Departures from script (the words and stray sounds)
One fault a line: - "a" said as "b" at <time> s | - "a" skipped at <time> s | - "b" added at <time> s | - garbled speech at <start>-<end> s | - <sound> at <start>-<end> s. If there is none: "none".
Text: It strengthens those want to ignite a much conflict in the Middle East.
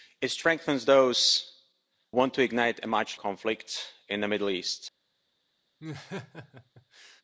- laugh at 5.8-7.2 s